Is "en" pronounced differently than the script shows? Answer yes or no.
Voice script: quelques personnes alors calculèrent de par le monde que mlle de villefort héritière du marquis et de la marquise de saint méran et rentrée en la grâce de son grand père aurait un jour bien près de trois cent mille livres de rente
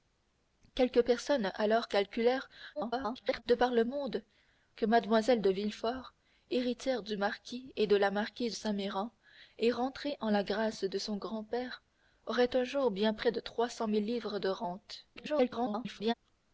no